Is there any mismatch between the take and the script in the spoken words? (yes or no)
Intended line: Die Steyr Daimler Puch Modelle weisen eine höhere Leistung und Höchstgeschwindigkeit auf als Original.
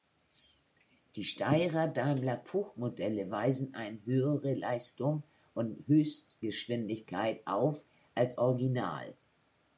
no